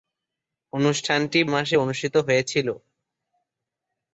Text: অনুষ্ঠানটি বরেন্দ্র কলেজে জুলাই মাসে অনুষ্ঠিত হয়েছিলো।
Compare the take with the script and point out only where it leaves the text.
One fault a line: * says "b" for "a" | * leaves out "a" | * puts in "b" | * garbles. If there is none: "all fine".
* leaves out "বরেন্দ্র কলেজে জুলাই"